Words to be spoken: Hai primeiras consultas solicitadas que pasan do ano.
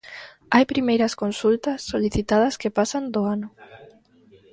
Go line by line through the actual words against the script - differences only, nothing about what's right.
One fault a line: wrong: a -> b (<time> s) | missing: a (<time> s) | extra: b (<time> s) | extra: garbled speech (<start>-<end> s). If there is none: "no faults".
no faults